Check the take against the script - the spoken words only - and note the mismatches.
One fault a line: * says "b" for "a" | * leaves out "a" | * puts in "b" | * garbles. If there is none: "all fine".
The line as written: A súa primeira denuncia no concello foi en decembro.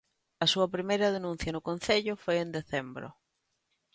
all fine